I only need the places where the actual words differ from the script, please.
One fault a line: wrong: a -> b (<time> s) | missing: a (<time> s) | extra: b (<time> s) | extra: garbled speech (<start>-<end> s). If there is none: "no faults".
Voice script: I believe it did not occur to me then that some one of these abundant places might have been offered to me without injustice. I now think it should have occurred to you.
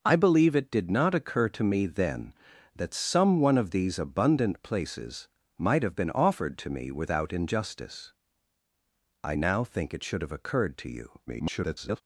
extra: garbled speech (11.3-12.0 s)